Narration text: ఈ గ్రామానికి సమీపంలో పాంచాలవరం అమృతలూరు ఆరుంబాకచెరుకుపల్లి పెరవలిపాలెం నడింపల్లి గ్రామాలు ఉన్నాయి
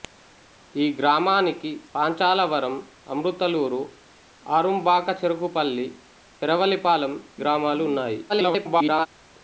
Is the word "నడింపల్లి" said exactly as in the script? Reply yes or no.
no